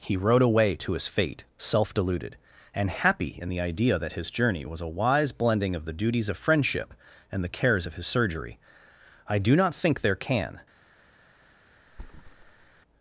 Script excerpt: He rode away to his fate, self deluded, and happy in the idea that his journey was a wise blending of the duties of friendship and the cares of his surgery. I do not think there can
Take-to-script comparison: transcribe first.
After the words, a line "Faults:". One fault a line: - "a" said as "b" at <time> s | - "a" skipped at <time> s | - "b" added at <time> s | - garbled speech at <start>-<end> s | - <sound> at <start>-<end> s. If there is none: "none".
He rode away to his fate, self deluded, and happy in the idea that his journey was a wise blending of the duties of friendship and the cares of his surgery. I do not think there can
Faults:
- thud at 11.9-12.8 s